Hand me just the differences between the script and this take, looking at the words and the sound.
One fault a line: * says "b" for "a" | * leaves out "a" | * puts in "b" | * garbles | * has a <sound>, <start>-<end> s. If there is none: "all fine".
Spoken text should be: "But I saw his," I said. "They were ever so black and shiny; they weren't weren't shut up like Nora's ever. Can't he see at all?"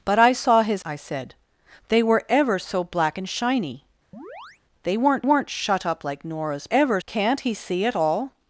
* has a chirp, 4.1-4.6 s